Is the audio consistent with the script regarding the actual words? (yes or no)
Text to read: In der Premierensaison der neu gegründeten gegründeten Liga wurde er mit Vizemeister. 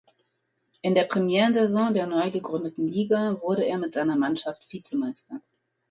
no